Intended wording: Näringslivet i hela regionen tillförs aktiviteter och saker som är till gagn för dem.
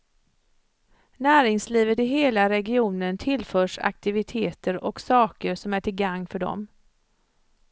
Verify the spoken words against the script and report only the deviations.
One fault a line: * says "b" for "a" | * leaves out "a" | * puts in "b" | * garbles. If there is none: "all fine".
all fine